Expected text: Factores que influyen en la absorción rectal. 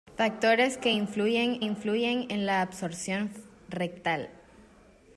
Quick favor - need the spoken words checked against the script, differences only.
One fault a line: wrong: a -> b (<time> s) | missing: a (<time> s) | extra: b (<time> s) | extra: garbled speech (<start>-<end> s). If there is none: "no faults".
extra: influyen (1.6 s)